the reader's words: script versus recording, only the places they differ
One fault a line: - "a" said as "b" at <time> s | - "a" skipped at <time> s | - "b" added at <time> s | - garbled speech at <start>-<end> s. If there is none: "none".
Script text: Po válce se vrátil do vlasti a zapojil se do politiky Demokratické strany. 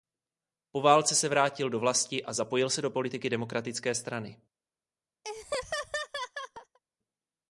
none